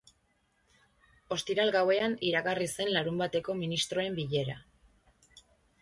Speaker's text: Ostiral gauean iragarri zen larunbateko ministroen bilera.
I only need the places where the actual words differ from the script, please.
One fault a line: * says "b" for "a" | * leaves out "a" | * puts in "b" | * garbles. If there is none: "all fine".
all fine